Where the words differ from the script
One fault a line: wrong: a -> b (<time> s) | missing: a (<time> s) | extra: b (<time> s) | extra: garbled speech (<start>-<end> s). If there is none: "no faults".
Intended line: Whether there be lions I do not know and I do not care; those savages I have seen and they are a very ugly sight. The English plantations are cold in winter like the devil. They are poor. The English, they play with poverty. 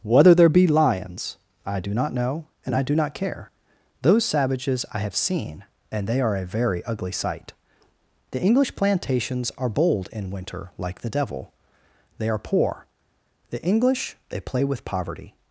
wrong: cold -> bold (9.7 s)